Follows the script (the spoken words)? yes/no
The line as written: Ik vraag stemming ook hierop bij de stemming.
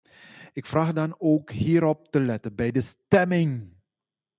no